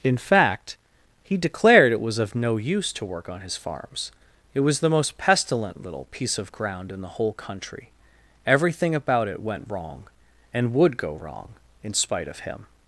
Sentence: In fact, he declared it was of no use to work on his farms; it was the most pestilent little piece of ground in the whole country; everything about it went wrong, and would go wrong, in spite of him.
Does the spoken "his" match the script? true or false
true